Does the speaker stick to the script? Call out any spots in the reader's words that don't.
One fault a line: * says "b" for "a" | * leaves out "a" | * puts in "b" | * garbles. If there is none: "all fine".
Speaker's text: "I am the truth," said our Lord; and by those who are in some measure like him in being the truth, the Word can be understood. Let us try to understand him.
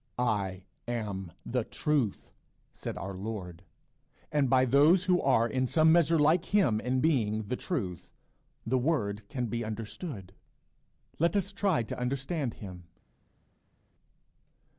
all fine